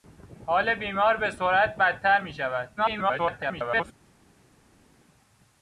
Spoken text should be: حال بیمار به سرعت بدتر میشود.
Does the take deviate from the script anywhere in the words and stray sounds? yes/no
yes